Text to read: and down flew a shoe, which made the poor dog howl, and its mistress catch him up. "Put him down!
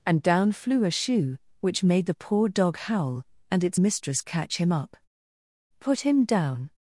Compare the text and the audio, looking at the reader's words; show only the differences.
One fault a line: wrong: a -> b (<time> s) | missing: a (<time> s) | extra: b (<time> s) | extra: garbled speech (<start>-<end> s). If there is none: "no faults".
no faults